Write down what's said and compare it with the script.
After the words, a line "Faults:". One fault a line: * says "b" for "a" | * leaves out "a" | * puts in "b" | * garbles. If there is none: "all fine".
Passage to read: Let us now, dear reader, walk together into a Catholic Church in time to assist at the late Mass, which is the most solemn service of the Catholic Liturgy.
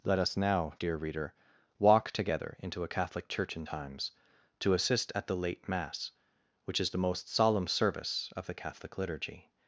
Let us now, dear reader, walk together into a Catholic Church in times to assist at the late Mass, which is the most solemn service of the Catholic Liturgy.
Faults:
* says "times" for "time"